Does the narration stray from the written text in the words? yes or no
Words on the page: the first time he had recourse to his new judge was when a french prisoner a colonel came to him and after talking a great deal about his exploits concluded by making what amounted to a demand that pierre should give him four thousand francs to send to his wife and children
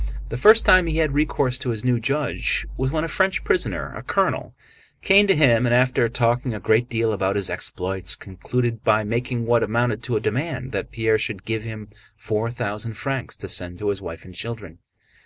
no